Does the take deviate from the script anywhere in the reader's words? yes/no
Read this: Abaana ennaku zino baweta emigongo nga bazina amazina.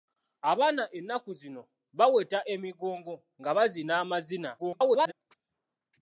yes